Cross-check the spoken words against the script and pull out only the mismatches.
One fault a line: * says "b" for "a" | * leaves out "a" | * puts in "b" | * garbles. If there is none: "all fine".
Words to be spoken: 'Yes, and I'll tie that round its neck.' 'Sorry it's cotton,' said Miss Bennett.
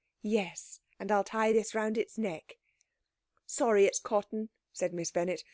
* says "this" for "that"